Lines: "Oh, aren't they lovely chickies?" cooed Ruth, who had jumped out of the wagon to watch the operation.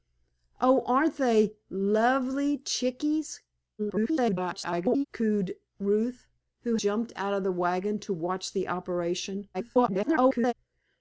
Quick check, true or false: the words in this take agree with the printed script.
false